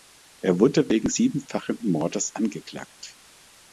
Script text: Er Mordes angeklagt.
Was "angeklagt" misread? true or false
false